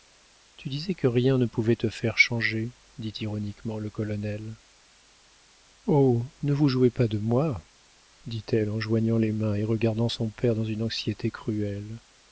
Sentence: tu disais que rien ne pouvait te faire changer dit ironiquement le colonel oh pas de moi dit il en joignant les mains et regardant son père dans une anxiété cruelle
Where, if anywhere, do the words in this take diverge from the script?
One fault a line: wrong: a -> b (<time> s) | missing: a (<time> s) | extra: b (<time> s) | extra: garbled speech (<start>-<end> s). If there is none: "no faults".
extra: ne vous jouez (6.4 s)
wrong: il -> elle (8.5 s)